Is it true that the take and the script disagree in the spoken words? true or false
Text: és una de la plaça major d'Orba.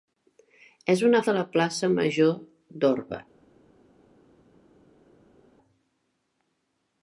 false